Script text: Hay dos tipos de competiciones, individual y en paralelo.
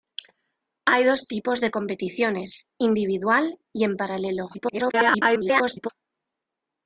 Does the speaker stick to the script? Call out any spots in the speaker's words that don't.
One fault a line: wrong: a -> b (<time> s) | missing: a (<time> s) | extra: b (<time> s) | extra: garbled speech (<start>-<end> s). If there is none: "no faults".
extra: garbled speech (4.5-5.9 s)